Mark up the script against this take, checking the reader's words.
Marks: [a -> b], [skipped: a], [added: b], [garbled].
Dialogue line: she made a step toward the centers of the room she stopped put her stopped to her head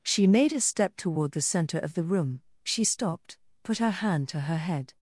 she made a step toward the [centers -> center] of the room she stopped put her [stopped -> hand] to her head